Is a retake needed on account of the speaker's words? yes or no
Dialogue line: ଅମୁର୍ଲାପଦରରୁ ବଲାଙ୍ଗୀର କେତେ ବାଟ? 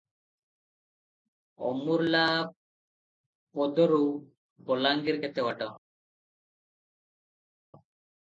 no